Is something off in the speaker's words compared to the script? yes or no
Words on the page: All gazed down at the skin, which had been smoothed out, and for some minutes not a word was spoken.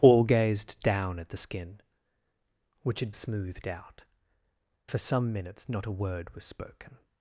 yes